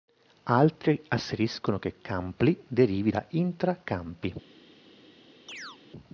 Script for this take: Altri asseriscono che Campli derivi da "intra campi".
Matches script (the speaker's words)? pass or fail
pass